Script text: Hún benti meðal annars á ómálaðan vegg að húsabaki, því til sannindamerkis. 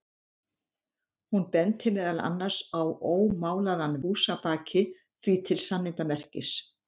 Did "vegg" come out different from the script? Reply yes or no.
yes